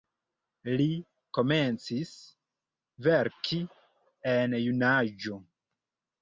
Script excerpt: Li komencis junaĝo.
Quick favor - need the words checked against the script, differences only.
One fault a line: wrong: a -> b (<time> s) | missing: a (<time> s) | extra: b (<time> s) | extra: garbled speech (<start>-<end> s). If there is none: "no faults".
extra: verki en (3.1 s)